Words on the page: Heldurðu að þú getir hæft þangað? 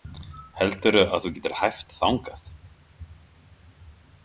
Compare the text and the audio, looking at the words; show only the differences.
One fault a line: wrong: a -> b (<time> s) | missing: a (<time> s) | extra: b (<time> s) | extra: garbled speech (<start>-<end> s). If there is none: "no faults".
no faults